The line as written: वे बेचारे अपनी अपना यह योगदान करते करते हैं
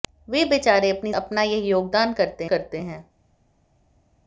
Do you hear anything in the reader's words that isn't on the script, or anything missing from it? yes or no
no